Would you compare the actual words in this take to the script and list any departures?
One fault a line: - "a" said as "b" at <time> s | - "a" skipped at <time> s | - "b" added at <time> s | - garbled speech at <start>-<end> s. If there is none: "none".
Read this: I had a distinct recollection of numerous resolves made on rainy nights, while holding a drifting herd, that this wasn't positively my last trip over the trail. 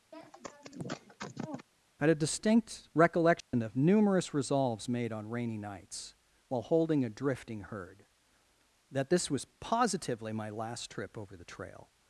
- "wasn't" said as "was" at 9.3 s